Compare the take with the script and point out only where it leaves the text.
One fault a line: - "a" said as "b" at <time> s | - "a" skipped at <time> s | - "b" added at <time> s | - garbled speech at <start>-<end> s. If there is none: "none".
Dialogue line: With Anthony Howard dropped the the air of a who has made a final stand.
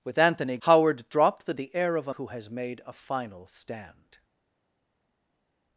none